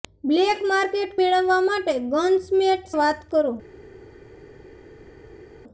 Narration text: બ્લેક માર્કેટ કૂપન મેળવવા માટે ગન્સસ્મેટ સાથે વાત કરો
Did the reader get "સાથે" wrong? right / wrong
wrong